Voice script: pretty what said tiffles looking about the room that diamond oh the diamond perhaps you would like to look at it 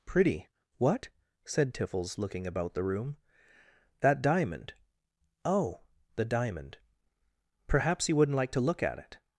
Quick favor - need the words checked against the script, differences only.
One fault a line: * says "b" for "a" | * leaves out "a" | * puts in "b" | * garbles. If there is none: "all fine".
* says "wouldn't" for "would"